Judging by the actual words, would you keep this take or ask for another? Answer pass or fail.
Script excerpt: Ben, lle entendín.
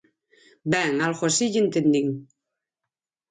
fail